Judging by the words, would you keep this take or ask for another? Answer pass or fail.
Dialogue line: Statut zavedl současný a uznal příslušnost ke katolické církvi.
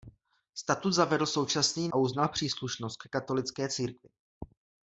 pass